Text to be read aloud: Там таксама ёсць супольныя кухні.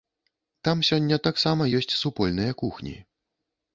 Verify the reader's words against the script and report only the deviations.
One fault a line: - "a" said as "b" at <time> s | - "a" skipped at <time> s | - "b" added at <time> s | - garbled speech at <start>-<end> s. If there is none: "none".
- "сёння" added at 0.9 s